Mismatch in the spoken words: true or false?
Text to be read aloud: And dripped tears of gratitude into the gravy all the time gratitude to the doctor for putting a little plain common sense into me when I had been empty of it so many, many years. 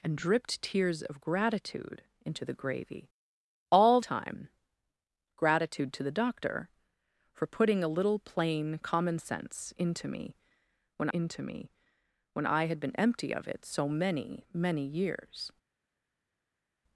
true